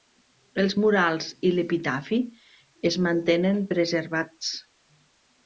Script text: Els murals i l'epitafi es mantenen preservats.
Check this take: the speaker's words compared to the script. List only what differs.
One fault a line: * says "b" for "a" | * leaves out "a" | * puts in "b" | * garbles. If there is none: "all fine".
all fine